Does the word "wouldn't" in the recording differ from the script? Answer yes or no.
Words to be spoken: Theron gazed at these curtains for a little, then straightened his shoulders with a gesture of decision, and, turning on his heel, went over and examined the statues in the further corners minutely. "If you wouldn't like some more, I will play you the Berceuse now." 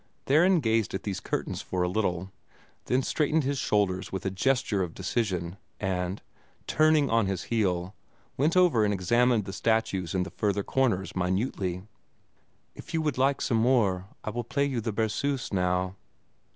yes